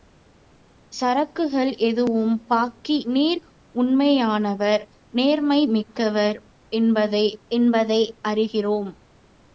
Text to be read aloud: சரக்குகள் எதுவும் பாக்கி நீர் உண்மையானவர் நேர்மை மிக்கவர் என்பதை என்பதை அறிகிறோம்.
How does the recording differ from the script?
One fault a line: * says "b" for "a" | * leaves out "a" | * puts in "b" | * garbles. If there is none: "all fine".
all fine